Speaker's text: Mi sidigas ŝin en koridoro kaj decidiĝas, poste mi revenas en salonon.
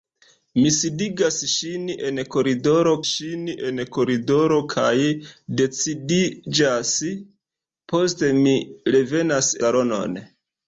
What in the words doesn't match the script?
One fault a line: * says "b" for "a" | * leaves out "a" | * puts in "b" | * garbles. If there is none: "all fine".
* puts in "ŝin en koridoro"
* leaves out "en"